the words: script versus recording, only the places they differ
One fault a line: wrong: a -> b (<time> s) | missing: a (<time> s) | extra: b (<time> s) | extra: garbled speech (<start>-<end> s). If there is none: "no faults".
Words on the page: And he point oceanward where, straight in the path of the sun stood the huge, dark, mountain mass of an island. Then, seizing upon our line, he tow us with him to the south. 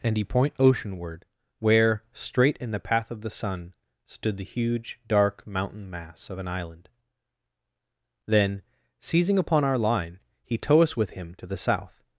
no faults